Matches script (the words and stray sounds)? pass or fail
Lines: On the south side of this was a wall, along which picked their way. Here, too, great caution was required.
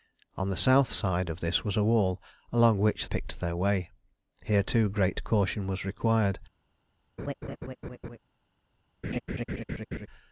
fail